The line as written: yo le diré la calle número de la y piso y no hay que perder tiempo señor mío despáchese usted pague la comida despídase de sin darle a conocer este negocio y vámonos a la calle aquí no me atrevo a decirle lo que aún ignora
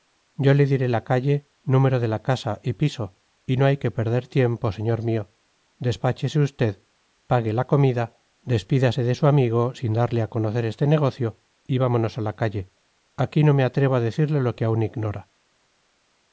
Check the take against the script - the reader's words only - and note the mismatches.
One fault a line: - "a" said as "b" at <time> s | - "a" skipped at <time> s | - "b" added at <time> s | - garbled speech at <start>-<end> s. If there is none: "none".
- "casa" added at 2.2 s
- "su amigo" added at 9.1 s